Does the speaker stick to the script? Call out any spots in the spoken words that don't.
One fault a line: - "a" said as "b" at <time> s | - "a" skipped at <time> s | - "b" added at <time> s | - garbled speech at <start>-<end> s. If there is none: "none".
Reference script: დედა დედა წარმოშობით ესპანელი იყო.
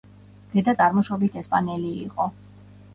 - "დედა" skipped at 0.8 s